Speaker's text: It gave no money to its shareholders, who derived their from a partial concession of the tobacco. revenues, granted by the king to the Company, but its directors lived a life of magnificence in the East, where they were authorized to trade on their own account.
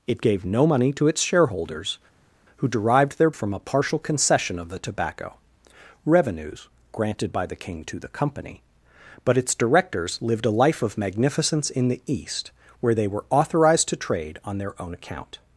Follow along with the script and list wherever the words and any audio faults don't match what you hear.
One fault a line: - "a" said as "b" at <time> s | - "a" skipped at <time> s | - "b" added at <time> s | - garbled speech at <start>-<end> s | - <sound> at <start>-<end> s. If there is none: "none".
none